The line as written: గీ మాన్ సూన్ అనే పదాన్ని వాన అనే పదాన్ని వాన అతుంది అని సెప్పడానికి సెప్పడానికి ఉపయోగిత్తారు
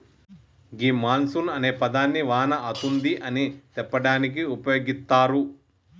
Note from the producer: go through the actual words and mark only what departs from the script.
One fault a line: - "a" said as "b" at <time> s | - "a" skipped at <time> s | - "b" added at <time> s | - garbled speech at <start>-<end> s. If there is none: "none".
- "అనే పదాన్ని వాన" skipped at 2.5 s
- "సెప్పడానికి" skipped at 4.4 s